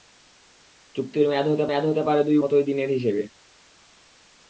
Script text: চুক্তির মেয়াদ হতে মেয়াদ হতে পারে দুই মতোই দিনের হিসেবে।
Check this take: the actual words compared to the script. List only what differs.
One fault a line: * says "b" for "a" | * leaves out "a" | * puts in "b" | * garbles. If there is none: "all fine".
all fine